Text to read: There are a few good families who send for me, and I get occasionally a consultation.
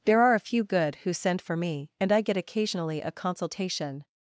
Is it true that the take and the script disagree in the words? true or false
true